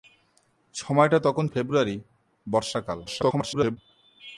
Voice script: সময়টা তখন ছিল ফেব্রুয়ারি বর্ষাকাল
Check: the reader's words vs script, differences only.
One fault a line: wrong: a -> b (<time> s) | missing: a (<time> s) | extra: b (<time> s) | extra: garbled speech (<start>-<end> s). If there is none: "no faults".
missing: ছিল (1.4 s)
extra: garbled speech (3.1-3.8 s)